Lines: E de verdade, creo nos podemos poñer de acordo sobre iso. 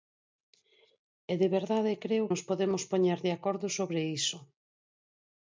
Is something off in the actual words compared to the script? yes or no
no